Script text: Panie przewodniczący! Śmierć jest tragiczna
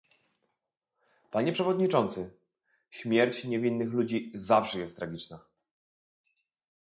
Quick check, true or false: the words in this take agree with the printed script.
false